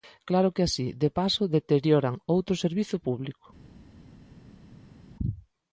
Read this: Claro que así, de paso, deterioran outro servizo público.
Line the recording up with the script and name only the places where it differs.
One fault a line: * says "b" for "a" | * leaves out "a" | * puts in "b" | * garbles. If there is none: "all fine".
all fine